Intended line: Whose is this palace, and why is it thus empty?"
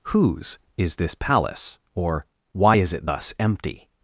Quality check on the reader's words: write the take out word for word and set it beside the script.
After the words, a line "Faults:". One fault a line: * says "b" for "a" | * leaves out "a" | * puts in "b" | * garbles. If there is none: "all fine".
Whose is this palace, or why is it thus empty?"
Faults:
* says "or" for "and"